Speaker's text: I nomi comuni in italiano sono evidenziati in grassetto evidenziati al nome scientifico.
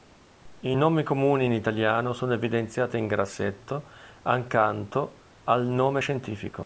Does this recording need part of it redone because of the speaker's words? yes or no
yes